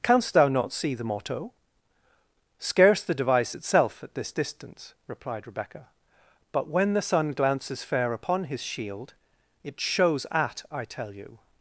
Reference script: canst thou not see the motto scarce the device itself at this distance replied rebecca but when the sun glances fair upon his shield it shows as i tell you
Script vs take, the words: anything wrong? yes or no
yes